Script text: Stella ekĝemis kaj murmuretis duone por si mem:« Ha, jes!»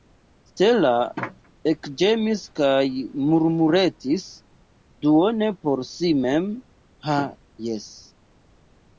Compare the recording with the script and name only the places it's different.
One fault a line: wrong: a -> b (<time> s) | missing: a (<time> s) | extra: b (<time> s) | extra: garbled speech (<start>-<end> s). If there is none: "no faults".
no faults